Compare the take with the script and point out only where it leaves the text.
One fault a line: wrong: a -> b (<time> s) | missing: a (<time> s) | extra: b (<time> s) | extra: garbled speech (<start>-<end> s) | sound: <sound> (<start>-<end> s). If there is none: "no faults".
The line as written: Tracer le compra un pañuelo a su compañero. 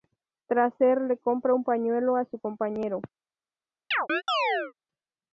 sound: chirp (3.9-4.7 s)